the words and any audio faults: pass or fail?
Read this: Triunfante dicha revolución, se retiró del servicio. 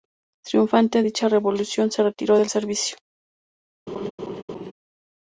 fail